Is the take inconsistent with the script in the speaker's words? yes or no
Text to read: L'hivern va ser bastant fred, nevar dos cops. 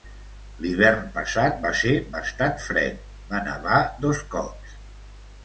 yes